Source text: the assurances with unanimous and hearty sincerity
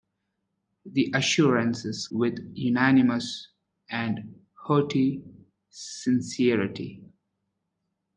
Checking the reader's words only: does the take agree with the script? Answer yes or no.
yes